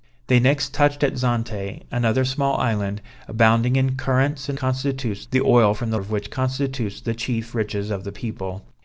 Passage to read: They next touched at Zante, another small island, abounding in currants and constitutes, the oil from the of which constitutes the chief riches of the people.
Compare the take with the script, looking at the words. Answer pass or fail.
pass